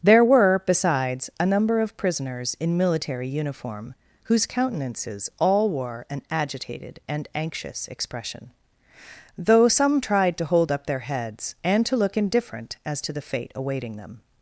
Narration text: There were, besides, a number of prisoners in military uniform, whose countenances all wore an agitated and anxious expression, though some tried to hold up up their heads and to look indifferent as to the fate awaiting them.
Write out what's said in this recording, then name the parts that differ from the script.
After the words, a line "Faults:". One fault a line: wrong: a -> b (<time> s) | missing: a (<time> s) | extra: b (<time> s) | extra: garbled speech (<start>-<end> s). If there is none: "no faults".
There were, besides, a number of prisoners in military uniform, whose countenances all wore an agitated and anxious expression, though some tried to hold up their heads and to look indifferent as to the fate awaiting them.
Faults:
missing: up (10.9 s)